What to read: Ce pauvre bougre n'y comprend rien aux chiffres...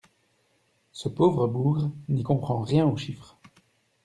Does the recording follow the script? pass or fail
pass